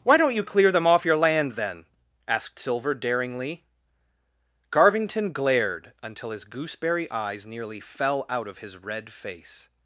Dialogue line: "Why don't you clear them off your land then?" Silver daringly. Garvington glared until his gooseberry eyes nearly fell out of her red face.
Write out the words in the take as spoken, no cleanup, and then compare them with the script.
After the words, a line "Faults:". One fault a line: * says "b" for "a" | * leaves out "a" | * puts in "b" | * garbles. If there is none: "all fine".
"Why don't you clear them off your land then?" asked Silver daringly. Garvington glared until his gooseberry eyes nearly fell out of his red face.
Faults:
* puts in "asked"
* says "his" for "her"